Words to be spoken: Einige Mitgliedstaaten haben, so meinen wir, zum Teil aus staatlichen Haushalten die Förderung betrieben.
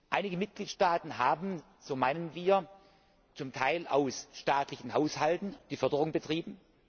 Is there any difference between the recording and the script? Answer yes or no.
no